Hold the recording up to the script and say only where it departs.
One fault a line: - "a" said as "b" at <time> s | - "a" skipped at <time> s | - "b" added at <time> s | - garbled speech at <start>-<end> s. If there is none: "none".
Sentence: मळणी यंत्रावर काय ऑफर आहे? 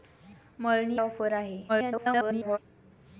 - "यंत्रावर काय" skipped at 1.0 s
- garbled speech at 1.7-2.6 s